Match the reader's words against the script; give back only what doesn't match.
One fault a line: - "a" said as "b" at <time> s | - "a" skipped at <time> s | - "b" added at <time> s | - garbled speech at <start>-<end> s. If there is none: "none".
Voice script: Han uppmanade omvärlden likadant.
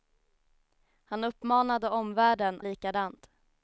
none